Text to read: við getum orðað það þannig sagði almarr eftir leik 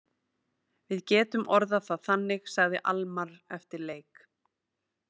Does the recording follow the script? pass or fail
pass